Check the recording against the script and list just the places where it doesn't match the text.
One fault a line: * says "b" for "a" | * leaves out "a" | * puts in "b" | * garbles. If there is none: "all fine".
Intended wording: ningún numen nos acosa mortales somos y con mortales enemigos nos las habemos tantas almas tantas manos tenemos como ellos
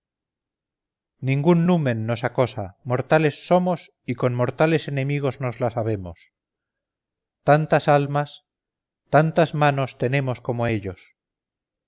all fine